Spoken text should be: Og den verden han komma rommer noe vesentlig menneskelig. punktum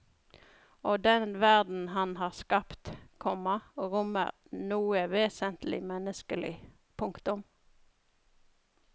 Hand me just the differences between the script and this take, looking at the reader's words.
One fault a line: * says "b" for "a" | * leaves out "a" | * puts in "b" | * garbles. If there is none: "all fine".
* puts in "har skapt"